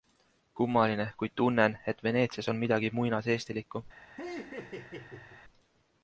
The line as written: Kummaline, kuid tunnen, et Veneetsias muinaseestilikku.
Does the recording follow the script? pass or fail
fail